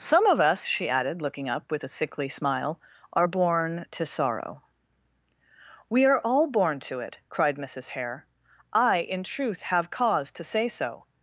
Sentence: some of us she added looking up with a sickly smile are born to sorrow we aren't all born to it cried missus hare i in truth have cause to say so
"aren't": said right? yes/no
no